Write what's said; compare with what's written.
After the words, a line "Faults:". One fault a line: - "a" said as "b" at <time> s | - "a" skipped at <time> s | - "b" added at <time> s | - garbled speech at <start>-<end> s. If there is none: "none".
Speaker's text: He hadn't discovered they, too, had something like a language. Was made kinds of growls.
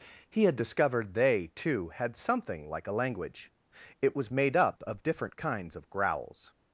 He had discovered they, too, had something like a language. It was made up of different kinds of growls.
Faults:
- "hadn't" said as "had" at 0.5 s
- "It" added at 4.0 s
- "up of different" added at 4.6 s